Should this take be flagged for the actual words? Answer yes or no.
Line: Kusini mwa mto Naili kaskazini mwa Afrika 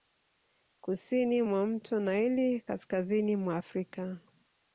no